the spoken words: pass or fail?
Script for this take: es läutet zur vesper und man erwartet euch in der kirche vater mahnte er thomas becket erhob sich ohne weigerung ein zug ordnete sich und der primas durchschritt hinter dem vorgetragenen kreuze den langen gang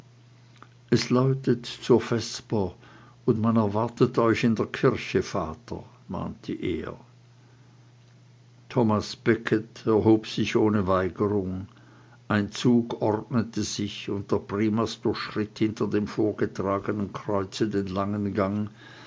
pass